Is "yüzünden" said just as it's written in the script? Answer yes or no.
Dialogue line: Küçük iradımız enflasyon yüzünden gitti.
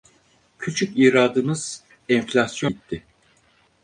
no